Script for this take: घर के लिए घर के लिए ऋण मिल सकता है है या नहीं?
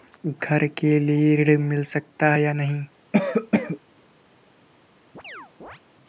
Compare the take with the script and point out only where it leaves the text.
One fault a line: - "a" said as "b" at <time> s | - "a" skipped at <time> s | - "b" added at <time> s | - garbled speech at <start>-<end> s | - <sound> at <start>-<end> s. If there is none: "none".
- "घर के लिए" skipped at 1.4 s
- "है" skipped at 2.4 s
- cough at 3.1-3.8 s
- chirp at 5.1-5.8 s